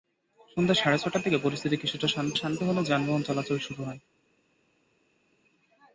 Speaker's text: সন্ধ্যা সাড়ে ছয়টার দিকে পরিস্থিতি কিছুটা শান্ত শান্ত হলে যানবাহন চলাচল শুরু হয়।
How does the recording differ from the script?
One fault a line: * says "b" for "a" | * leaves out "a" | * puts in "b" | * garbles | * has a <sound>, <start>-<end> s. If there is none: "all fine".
all fine